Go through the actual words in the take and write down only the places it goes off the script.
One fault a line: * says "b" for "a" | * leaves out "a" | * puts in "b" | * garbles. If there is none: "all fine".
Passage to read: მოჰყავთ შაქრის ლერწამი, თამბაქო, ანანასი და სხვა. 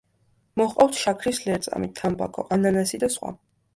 all fine